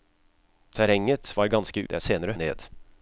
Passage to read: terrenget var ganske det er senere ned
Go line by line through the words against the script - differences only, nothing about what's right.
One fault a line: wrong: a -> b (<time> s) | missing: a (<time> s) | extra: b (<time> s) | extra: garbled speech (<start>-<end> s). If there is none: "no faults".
no faults